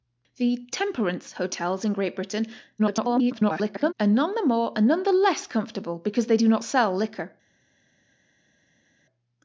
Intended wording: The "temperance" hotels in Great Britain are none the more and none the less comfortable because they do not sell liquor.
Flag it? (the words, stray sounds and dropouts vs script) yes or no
yes